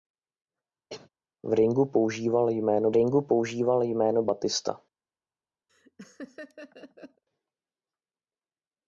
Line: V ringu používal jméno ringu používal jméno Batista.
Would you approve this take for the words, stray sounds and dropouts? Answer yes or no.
no